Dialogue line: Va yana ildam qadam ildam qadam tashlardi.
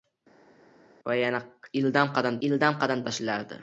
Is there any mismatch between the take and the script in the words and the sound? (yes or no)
no